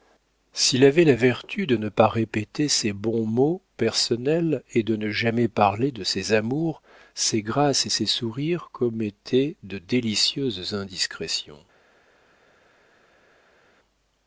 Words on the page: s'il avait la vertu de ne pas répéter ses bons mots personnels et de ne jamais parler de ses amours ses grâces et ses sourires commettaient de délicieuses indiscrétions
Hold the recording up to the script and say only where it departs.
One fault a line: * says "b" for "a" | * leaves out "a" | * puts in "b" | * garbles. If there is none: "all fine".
all fine